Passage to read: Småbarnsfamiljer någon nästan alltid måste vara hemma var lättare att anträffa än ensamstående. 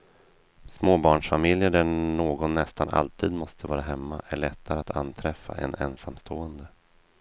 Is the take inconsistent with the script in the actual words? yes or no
yes